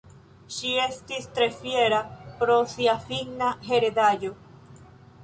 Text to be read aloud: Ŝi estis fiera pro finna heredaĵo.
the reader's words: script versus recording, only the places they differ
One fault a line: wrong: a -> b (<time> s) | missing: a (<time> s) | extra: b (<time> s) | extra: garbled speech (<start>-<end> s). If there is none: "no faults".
extra: tre (1.4 s)
extra: sia (2.7 s)